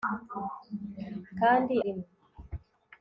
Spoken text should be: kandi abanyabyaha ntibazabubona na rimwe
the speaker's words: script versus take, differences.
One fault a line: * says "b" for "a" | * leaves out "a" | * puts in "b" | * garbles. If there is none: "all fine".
* leaves out "abanyabyaha ntibazabubona na"